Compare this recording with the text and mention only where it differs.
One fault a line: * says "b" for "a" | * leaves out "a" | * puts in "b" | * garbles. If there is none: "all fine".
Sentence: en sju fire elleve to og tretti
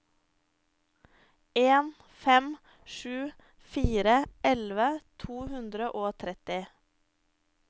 * puts in "fem"
* puts in "hundre"